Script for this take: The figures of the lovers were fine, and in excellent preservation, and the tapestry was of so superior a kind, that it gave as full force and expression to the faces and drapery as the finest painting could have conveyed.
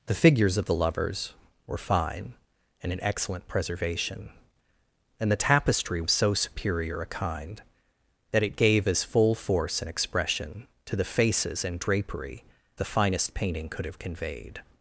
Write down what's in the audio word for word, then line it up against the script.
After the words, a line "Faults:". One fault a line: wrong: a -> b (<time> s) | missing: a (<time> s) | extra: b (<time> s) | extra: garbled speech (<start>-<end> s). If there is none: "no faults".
The figures of the lovers were fine, and in excellent preservation, and the tapestry of so superior a kind, that it gave as full force and expression to the faces and drapery the finest painting could have conveyed.
Faults:
missing: was (6.0 s)
missing: as (12.4 s)